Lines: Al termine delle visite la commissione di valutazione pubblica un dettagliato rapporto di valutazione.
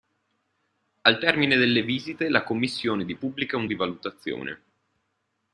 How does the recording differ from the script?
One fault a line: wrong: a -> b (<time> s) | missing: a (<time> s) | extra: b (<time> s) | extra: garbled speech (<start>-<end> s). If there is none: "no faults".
missing: valutazione (3.1 s)
missing: dettagliato rapporto (3.6 s)